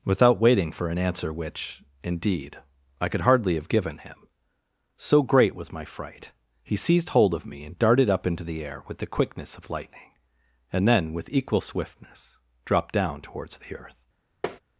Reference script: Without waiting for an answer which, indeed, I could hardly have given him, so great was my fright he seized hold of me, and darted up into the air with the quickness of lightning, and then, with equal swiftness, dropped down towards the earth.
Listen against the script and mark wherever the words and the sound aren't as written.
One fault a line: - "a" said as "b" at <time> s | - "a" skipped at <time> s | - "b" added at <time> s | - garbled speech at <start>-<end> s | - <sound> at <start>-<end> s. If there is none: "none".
- tap at 14.4-14.6 s